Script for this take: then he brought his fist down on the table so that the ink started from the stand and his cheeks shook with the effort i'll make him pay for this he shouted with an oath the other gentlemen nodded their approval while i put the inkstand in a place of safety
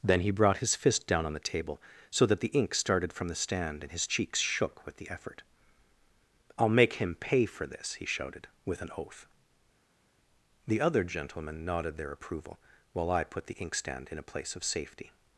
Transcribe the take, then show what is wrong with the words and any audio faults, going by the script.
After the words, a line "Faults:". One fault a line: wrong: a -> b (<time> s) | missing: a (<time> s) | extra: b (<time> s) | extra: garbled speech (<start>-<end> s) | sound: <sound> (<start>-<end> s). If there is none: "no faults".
then he brought his fist down on the table so that the ink started from the stand and his cheeks shook with the effort i'll make him pay for this he shouted with an oath the other gentlemen nodded their approval while i put the inkstand in a place of safety
Faults:
no faults